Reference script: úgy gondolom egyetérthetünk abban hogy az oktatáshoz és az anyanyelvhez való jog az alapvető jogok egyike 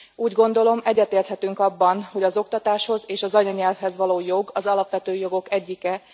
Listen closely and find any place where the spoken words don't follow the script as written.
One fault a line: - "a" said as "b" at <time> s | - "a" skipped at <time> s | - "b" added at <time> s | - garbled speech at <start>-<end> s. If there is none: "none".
none